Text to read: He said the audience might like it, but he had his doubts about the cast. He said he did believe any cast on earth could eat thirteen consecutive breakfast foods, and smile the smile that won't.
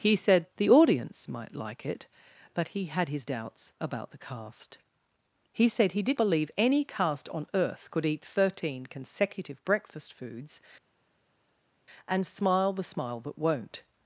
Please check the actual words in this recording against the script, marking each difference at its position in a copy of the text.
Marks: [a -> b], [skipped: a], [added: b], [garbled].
He said the audience might like it, but he had his doubts about the cast. He said he did believe any cast on earth could eat thirteen consecutive breakfast foods, and smile the smile that won't.